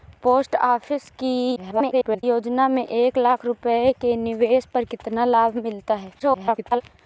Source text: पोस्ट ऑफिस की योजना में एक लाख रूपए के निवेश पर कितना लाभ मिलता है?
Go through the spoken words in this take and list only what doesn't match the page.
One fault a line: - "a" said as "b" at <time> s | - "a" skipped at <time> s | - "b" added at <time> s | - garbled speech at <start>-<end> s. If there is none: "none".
- garbled speech at 1.6-2.2 s
- garbled speech at 6.2-6.8 s